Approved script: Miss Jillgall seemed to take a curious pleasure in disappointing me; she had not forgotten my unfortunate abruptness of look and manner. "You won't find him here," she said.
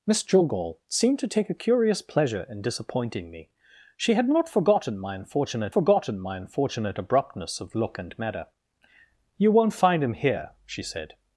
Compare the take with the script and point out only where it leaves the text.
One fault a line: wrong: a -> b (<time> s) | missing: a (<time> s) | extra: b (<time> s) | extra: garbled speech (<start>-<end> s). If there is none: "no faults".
extra: forgotten my unfortunate (5.7 s)